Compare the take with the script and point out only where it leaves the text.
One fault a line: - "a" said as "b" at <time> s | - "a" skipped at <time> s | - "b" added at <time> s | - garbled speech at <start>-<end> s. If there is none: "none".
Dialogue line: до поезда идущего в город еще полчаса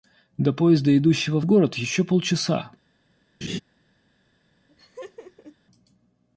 none